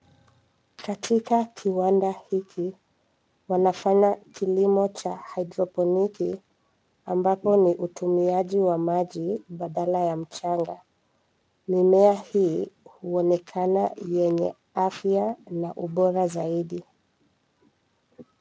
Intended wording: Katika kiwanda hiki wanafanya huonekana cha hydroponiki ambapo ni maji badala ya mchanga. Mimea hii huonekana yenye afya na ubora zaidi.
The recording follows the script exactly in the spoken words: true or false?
false